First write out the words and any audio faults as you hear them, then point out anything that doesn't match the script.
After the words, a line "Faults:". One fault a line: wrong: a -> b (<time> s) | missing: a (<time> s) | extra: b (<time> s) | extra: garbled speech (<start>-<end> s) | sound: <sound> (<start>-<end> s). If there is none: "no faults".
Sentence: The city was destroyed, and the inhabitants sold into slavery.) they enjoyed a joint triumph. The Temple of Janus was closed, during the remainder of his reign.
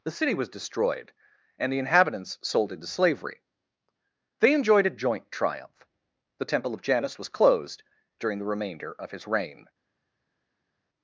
The city was destroyed, and the inhabitants sold into slavery.) they enjoyed a joint triumph. The Temple of Janus was closed, during the remainder of his reign.
Faults:
no faults